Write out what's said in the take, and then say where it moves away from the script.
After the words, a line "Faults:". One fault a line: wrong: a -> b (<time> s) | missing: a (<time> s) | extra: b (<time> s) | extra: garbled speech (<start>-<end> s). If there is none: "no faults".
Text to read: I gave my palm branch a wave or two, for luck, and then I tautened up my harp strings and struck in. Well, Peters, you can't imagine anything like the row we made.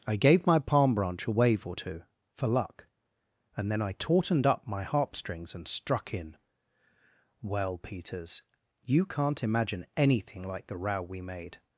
I gave my palm branch a wave or two, for luck, and then I tautened up my harp strings and struck in. Well, Peters, you can't imagine anything like the row we made.
Faults:
no faults